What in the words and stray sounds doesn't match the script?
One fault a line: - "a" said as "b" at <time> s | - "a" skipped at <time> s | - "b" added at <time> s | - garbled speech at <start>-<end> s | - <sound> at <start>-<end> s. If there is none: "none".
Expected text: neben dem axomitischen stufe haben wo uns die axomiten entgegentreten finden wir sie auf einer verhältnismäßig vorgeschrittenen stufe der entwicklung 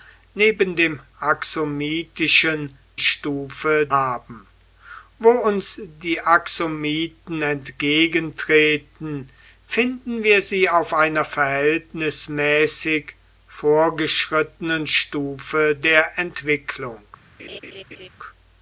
- laugh at 17.4-18.1 s